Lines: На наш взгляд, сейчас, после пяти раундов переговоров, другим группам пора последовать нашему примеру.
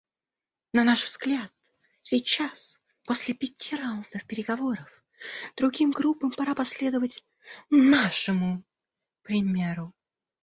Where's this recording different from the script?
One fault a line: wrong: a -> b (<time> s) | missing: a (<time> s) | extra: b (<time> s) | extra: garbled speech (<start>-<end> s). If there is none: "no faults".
no faults